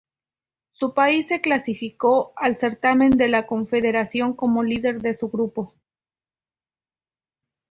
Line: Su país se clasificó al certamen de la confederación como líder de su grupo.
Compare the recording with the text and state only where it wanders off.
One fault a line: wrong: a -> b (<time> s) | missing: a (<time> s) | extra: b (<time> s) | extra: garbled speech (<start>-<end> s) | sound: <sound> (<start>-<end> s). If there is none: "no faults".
no faults